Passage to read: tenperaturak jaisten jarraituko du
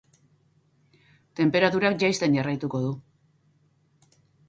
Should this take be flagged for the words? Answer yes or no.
no